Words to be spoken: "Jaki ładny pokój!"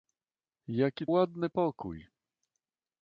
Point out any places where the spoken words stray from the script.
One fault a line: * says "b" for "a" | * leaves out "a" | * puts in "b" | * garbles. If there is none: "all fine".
all fine